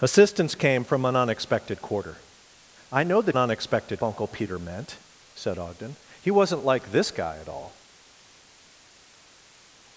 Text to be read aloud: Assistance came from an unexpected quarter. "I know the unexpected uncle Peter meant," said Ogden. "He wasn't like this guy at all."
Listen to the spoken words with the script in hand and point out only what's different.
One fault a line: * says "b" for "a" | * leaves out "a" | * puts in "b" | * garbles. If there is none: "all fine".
all fine